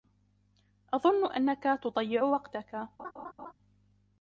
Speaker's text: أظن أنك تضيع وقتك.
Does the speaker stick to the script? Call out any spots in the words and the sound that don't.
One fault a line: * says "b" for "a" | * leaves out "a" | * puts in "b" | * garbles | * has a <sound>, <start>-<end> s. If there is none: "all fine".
* has a laugh, 3.0-3.5 s